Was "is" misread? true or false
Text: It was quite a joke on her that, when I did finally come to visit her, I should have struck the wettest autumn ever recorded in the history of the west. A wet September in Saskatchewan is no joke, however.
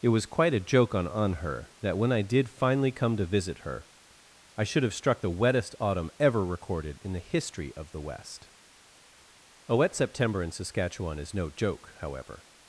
false